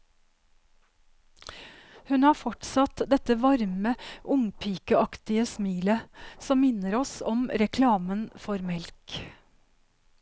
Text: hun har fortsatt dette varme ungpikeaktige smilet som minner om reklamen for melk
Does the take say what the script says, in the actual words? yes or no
no